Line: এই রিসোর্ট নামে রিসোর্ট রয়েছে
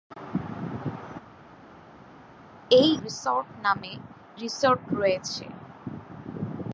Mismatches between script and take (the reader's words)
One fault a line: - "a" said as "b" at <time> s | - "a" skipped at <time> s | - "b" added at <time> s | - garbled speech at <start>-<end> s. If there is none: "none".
none